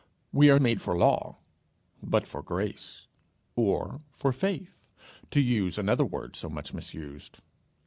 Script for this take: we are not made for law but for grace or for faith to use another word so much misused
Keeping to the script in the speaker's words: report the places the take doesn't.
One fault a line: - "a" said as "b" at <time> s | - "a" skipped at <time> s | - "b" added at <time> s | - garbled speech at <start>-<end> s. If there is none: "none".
- "not" skipped at 0.6 s